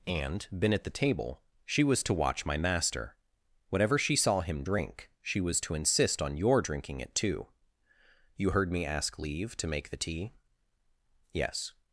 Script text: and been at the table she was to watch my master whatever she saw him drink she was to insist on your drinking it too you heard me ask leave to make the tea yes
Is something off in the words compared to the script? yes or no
no